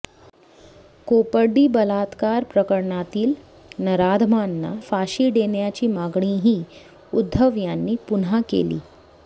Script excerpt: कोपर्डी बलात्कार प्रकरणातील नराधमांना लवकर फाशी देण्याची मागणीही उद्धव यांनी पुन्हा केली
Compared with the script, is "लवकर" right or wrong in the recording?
wrong